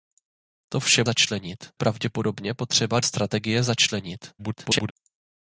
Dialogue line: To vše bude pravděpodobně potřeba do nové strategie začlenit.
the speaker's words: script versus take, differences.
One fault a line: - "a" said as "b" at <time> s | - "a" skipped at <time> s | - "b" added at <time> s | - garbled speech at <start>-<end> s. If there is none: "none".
- "bude" said as "začlenit" at 1.0 s
- "do nové" skipped at 3.0 s
- garbled speech at 4.4-4.9 s